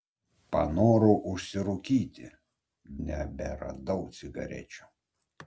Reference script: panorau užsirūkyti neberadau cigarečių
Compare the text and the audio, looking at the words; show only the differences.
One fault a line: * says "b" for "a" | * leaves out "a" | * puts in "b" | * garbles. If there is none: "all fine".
all fine